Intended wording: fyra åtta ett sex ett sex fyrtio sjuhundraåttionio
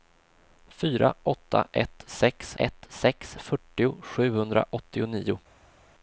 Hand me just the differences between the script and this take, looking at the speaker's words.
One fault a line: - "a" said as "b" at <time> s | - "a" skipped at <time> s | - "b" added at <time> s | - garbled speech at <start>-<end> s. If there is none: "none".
none